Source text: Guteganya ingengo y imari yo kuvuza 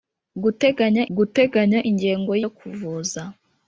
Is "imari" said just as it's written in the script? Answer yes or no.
no